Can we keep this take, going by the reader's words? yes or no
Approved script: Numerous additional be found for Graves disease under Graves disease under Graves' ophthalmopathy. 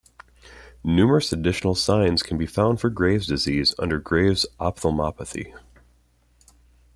no